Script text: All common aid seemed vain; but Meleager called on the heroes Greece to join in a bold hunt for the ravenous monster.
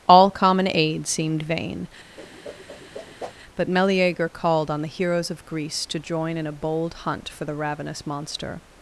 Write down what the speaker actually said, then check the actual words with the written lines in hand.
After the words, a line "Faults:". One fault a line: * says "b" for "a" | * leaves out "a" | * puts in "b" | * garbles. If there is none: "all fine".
All common aid seemed vain; but Meleager called on the heroes of Greece to join in a bold hunt for the ravenous monster.
Faults:
* puts in "of"